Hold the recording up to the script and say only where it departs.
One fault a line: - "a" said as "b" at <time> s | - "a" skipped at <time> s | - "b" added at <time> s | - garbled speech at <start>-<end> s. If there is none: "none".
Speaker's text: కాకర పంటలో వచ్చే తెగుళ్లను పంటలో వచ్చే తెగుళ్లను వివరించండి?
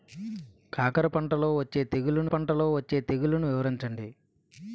none